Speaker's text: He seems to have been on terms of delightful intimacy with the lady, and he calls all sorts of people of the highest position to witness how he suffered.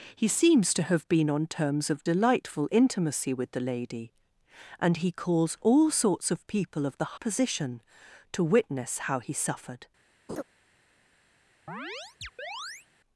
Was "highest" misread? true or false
true